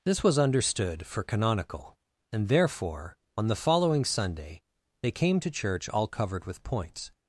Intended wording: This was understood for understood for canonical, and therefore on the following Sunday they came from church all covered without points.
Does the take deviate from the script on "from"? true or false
true